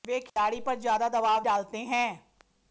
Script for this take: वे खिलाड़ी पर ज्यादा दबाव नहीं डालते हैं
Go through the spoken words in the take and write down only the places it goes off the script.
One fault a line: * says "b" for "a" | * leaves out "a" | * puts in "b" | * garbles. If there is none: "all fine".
* leaves out "नहीं"